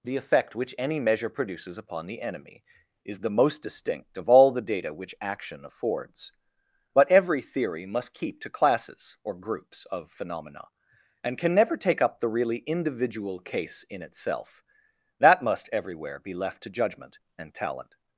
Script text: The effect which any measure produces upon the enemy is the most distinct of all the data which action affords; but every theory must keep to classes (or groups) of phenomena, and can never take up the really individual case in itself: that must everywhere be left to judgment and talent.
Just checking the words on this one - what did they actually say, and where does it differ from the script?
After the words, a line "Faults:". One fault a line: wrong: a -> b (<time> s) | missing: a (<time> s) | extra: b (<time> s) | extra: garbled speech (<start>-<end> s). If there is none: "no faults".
The effect which any measure produces upon the enemy is the most distinct of all the data which action affords; but every theory must keep to classes (or groups) of phenomena, and can never take up the really individual case in itself: that must everywhere be left to judgment and talent.
Faults:
no faults